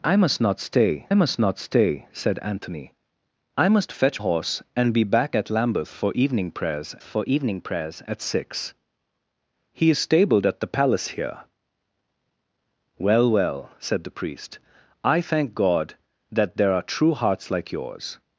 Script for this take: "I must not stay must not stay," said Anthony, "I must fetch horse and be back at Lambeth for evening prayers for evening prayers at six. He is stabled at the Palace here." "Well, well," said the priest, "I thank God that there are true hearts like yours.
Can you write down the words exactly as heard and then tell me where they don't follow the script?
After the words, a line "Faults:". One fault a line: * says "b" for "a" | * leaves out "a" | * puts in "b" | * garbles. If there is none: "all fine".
"I must not stay must not stay," said Anthony, "I must fetch horse and be back at Lambeth for evening prayers for evening prayers at six. He is stabled at the Palace here." "Well, well," said the priest, "I thank God that there are true hearts like yours.
Faults:
all fine